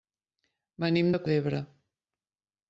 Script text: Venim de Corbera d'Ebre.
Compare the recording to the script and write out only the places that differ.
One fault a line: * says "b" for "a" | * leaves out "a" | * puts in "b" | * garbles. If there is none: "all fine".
* leaves out "Corbera"